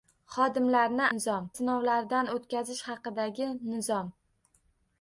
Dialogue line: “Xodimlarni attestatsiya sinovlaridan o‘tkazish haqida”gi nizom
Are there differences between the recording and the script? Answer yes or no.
yes